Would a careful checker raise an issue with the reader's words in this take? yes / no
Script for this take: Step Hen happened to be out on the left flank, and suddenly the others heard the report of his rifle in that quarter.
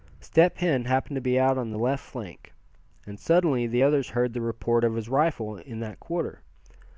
no